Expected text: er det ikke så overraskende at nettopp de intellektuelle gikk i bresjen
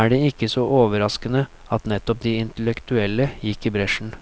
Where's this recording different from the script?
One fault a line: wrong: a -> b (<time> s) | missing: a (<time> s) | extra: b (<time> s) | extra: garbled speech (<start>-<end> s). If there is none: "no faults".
no faults